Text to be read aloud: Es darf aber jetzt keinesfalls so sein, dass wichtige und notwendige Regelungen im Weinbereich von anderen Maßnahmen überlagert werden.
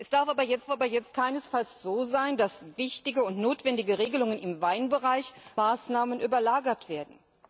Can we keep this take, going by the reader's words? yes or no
no